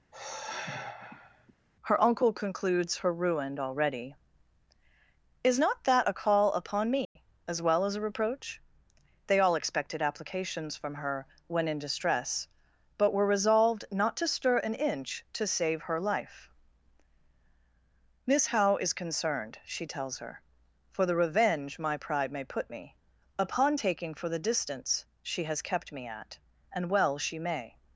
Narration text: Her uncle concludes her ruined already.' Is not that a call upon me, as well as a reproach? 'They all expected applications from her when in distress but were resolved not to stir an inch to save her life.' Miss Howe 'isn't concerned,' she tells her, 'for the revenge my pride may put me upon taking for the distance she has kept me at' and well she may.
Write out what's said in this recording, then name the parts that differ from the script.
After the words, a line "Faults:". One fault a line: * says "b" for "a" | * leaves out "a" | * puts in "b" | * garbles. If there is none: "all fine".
Her uncle concludes her ruined already.' Is not that a call upon me, as well as a reproach? 'They all expected applications from her when in distress but were resolved not to stir an inch to save her life.' Miss Howe 'is concerned,' she tells her, 'for the revenge my pride may put me upon taking for the distance she has kept me at' and well she may.
Faults:
* says "is" for "isn't"